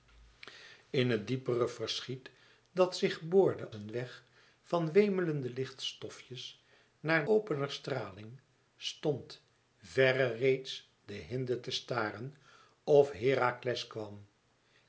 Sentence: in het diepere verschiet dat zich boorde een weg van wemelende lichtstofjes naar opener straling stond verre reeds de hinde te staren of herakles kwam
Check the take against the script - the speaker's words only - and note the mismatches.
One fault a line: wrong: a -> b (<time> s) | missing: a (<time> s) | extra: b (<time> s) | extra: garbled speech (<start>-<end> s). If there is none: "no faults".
no faults